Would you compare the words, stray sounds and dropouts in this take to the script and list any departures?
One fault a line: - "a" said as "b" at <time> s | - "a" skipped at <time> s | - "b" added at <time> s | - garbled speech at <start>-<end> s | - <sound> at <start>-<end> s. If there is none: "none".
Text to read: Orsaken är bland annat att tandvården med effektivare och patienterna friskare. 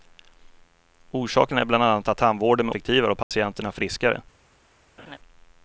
- dropout at 3.2-3.3 s
- laugh at 5.0-5.2 s